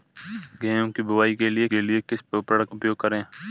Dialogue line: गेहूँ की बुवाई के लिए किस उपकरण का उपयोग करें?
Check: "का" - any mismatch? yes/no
yes